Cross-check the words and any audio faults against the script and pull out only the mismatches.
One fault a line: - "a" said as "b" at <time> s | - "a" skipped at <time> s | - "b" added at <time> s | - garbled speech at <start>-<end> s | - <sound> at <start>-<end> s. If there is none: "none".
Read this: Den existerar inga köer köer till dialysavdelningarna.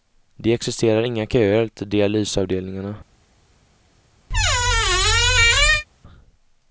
- "Den" said as "Det" at 0.3 s
- "köer" skipped at 1.7 s
- squeak at 4.3-5.8 s